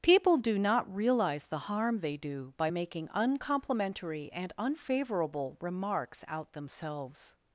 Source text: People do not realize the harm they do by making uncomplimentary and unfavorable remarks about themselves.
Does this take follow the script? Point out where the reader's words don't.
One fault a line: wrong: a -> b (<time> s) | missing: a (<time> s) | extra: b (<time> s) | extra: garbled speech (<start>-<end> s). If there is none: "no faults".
wrong: about -> out (6.3 s)